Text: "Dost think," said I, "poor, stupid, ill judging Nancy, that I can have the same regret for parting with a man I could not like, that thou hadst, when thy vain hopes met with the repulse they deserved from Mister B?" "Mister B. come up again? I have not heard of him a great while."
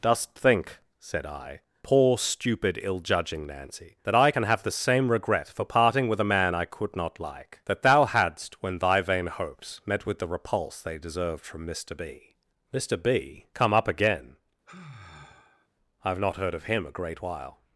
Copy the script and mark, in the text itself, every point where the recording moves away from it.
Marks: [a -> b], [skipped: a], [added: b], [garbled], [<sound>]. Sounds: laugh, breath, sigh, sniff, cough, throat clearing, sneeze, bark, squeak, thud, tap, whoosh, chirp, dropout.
"Dost think," said I, "poor, stupid, ill judging Nancy, that I can have the same regret for parting with a man I could not like, that thou hadst, when thy vain hopes met with the repulse they deserved from Mister B?" "Mister B. come up again? [sigh] I have not heard of him a great while."